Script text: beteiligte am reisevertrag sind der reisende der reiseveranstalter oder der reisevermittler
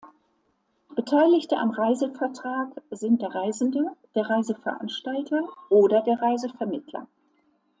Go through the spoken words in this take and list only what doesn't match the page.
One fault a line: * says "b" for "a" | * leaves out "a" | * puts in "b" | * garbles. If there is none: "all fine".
all fine